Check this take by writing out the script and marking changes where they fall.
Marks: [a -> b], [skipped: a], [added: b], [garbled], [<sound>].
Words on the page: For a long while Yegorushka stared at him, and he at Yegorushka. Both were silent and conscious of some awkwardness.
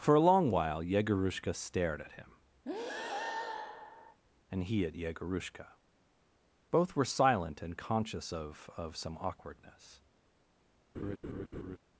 For a long while Yegorushka stared at him, [breath] and he at Yegorushka. Both were silent and conscious of [added: of] some awkwardness. [laugh]